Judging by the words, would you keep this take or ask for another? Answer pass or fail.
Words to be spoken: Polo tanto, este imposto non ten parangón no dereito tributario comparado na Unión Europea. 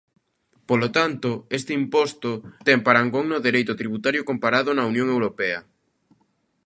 fail